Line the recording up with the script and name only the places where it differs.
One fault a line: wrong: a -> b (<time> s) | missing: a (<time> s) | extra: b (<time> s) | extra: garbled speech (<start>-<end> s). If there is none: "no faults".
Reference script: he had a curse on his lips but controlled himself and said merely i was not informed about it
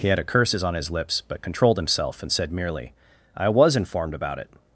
wrong: curse -> curses (0.2 s)
missing: not (3.8 s)